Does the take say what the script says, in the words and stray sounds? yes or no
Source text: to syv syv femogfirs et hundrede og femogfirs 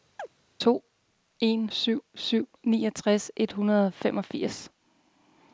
no